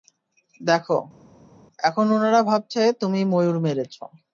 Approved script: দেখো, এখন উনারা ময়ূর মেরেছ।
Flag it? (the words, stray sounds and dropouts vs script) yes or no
yes